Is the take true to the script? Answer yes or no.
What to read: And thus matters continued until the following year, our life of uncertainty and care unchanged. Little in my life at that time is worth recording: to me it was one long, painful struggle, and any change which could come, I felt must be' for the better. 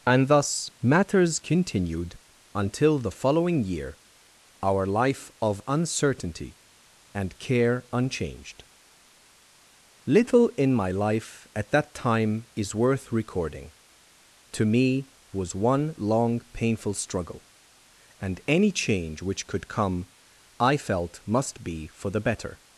no